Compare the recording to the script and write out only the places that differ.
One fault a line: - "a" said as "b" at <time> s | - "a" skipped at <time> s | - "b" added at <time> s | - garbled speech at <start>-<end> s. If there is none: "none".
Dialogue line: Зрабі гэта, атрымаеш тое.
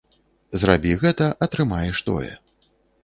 none